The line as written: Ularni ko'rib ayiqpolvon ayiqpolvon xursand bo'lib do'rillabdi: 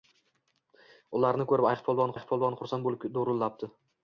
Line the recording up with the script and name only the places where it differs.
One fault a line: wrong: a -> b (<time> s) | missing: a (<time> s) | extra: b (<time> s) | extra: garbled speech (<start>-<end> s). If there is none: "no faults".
no faults